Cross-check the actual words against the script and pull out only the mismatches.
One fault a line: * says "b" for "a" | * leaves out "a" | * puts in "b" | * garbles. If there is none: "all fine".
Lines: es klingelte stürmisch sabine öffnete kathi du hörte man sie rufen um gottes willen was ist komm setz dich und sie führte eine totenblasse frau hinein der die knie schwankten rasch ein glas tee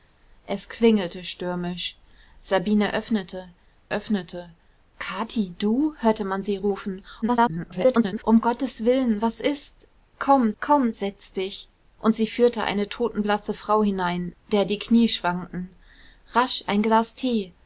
* puts in "öffnete"
* garbles
* puts in "komm"